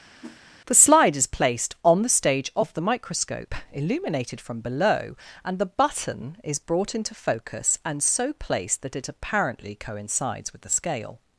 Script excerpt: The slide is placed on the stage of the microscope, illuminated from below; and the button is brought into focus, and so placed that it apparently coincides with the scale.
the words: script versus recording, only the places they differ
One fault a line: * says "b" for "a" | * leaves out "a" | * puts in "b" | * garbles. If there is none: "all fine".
all fine